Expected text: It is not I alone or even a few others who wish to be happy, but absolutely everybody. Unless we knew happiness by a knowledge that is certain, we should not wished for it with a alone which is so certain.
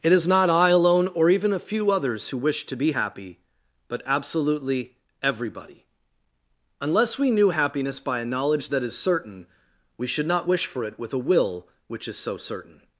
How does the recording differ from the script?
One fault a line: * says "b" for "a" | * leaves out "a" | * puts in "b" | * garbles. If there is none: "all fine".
* says "wish" for "wished"
* says "will" for "alone"